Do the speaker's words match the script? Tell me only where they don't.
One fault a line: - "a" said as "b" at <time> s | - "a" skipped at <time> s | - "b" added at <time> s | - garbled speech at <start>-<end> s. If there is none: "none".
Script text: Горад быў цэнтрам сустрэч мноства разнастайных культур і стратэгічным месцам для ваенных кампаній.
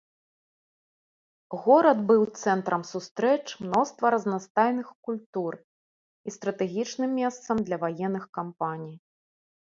none